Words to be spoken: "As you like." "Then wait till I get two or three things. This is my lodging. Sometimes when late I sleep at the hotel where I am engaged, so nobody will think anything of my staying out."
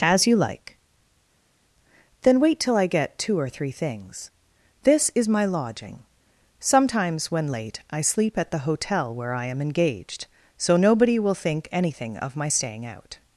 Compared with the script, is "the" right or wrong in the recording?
right